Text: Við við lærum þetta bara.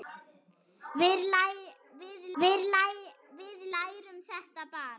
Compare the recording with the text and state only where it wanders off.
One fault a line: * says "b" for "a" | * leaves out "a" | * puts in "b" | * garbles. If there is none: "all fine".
all fine